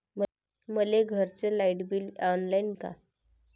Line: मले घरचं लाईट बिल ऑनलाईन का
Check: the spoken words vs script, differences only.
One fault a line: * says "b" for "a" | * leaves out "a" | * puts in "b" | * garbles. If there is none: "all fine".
all fine